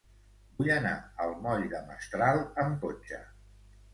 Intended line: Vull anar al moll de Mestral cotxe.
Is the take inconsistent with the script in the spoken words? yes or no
yes